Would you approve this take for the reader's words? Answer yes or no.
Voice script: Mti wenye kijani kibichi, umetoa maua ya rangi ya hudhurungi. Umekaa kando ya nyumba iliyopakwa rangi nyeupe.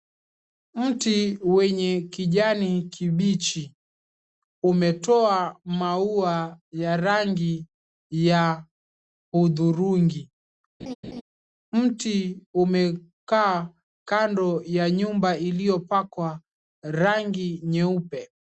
no